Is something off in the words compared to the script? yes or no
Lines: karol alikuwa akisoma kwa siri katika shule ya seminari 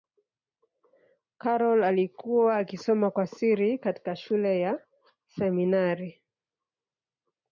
no